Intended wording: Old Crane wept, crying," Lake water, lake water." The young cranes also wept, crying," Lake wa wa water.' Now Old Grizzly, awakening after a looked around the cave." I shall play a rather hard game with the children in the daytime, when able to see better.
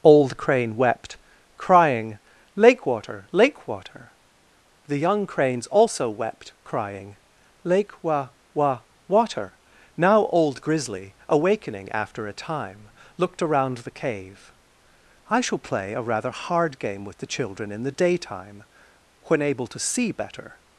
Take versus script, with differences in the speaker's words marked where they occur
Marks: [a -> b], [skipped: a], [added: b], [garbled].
Old Crane wept, crying," Lake water, lake water." The young cranes also wept, crying," Lake wa wa water.' Now Old Grizzly, awakening after a [added: time] looked around the cave." I shall play a rather hard game with the children in the daytime, when able to see better.